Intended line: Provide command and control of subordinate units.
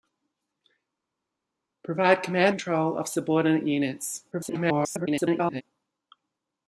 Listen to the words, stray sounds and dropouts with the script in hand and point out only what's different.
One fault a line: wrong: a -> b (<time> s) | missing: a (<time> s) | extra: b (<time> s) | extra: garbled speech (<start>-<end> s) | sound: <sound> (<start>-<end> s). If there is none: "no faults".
missing: and (2.6 s)
extra: garbled speech (4.3-5.6 s)